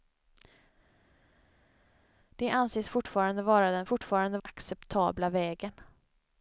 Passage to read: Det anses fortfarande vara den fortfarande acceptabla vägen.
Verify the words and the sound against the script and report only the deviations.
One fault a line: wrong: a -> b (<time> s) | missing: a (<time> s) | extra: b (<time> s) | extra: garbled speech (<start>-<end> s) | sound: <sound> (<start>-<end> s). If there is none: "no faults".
no faults